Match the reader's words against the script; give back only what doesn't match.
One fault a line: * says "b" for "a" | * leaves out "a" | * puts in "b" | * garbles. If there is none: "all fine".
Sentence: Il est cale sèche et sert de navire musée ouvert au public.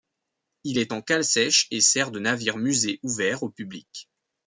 * puts in "en"